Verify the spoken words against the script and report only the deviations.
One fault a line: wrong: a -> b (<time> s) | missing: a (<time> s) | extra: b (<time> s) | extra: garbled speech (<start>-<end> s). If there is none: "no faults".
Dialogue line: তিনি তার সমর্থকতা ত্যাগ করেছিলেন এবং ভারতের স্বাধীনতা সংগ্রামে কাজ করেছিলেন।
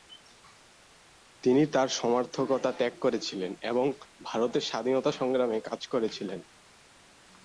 no faults